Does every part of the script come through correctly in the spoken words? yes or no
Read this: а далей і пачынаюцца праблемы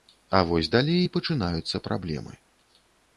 no